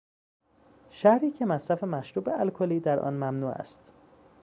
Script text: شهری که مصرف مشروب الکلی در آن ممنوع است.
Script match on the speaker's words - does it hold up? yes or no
yes